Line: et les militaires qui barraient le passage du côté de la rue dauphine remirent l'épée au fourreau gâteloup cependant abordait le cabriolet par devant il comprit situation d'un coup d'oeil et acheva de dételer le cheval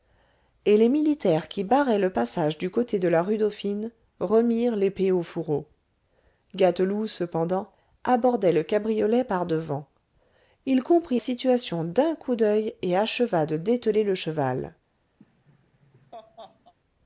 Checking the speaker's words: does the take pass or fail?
pass